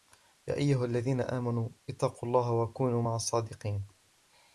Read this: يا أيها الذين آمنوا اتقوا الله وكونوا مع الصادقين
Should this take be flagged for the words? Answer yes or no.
no